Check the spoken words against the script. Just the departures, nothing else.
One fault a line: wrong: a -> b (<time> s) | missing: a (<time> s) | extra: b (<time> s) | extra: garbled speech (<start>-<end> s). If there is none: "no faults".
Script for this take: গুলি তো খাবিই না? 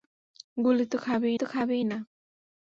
extra: তো খাবিই (1.3 s)